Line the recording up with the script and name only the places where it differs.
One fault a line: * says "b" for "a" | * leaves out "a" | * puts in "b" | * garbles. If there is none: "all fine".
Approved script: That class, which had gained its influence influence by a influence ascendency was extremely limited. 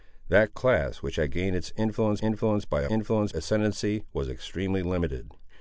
all fine